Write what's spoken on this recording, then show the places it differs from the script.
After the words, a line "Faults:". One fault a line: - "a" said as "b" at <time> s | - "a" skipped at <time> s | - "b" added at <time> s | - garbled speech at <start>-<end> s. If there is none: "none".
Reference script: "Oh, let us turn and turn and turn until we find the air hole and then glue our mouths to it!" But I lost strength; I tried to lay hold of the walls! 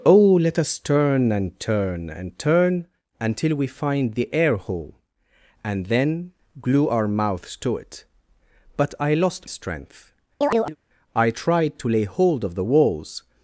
"Oh, let us turn and turn and turn until we find the air hole and then glue our mouths to it!" But I lost strength; I tried to lay hold of the walls!
Faults:
none